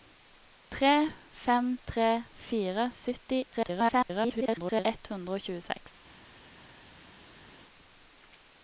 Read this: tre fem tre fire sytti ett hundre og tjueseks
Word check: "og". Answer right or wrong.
right